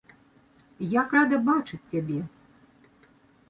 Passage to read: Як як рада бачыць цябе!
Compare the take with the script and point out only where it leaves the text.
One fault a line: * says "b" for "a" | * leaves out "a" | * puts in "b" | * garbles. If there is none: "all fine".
* leaves out "як"